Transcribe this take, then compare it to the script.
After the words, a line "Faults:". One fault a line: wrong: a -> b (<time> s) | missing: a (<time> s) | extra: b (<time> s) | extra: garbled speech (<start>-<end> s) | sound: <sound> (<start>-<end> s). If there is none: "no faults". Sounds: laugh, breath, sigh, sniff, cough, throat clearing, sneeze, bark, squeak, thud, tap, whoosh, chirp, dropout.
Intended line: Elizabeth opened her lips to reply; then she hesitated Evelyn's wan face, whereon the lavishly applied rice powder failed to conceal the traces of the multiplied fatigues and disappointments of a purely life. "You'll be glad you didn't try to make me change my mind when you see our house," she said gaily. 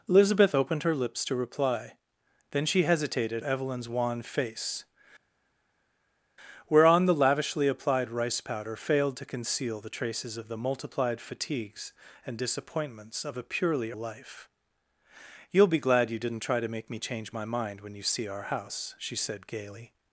Elizabeth opened her lips to reply; then she hesitated Evelyn's wan face, whereon the lavishly applied rice powder failed to conceal the traces of the multiplied fatigues and disappointments of a purely life. "You'll be glad you didn't try to make me change my mind when you see our house," she said gaily.
Faults:
no faults